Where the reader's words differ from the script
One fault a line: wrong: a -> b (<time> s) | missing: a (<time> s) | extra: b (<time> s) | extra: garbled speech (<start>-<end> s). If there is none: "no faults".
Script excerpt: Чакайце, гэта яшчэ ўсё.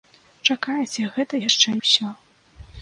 no faults